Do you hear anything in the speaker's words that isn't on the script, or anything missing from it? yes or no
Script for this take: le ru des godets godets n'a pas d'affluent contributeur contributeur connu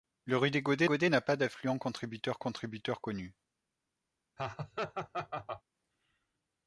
no